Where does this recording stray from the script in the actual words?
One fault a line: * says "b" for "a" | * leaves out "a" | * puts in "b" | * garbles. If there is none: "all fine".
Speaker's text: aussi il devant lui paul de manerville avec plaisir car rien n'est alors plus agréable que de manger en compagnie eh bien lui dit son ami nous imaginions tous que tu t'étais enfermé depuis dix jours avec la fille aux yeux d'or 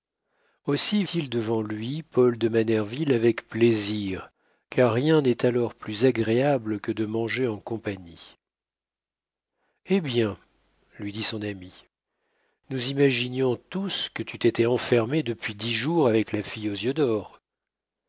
all fine